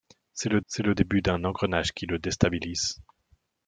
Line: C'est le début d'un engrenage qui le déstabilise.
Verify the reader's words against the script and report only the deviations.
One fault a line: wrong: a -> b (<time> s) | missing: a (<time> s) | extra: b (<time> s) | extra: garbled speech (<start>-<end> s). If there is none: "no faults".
extra: c'est le (0.7 s)